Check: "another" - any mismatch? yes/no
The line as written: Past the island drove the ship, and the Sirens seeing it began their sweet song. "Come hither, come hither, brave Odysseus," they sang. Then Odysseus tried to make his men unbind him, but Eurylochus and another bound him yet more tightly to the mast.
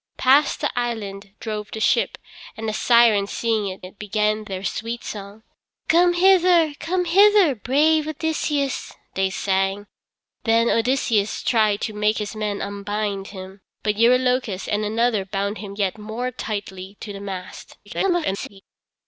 no